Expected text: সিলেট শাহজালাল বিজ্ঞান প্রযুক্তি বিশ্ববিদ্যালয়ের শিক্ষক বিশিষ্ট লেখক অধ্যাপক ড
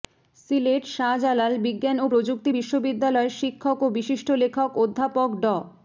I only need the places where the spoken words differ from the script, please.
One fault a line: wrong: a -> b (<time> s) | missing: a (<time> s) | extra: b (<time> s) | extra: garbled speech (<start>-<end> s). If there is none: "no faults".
extra: ও (2.0 s)
extra: ও (3.8 s)